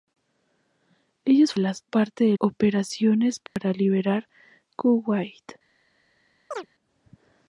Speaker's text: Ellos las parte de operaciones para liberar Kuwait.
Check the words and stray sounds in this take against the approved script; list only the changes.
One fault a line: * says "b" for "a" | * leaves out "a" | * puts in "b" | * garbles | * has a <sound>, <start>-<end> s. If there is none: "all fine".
* has a dropout, 3.5-3.6 s
* has a chirp, 6.5-6.7 s